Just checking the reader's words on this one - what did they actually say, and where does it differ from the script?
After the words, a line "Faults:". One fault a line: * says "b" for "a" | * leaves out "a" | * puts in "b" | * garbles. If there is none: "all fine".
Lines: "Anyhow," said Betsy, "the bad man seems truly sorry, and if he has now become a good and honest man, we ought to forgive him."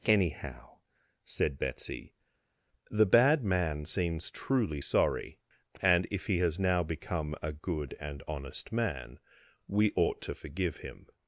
"Anyhow," said Betsy, "the bad man seems truly sorry, and if he has now become a good and honest man, we ought to forgive him."
Faults:
all fine